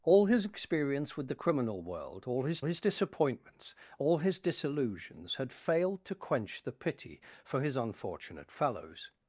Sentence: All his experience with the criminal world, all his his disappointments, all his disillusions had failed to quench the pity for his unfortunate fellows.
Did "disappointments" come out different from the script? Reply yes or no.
no